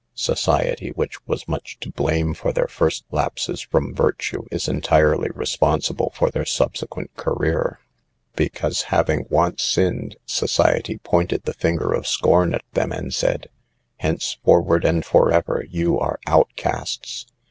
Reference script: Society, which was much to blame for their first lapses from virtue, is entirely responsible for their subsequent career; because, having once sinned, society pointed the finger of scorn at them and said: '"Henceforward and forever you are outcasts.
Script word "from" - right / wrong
right